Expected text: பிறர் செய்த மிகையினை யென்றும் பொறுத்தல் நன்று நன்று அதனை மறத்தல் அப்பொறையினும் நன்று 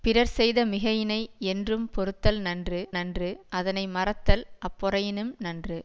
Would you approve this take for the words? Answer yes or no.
yes